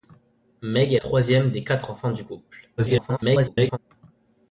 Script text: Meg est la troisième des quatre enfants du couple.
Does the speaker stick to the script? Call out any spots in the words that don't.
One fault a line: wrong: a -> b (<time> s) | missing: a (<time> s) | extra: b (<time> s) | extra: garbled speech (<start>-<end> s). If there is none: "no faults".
missing: la (1.0 s)
extra: garbled speech (2.8-3.8 s)